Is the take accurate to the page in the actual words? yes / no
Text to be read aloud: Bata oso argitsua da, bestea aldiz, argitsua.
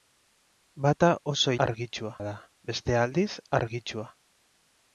yes